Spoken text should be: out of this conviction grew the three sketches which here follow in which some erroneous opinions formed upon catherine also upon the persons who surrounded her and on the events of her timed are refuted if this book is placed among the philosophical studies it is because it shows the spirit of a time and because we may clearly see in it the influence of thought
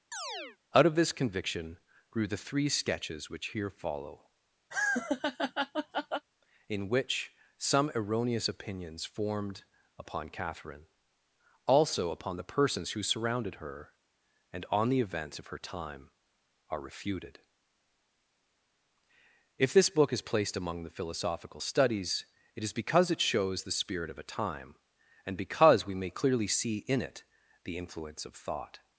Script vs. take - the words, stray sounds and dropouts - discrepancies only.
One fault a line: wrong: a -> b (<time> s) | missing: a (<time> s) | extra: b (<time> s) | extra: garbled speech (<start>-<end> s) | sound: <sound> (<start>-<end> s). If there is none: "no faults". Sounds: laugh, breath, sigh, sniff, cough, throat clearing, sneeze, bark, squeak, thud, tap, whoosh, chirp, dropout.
sound: chirp (0.1-0.6 s)
sound: laugh (4.7-6.3 s)
wrong: timed -> time (15.6 s)